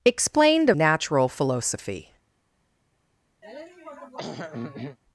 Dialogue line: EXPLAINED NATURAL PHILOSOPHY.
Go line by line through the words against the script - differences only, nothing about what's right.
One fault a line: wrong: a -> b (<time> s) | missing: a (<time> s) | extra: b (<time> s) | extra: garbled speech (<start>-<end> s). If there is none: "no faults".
no faults